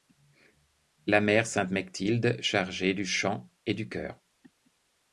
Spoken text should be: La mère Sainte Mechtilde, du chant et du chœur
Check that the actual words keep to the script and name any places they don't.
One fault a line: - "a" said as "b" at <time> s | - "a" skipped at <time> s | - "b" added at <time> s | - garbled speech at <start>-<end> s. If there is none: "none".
- "chargée" added at 2.4 s